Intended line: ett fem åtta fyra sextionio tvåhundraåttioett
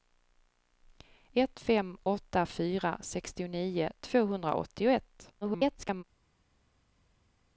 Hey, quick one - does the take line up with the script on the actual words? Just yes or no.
no